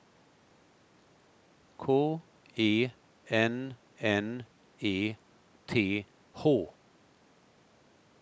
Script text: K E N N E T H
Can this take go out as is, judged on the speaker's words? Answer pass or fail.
pass